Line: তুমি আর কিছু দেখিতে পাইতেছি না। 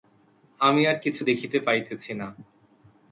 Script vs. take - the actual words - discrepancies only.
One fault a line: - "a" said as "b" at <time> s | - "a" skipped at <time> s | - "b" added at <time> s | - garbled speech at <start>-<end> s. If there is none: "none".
- "তুমি" said as "আমি" at 0.6 s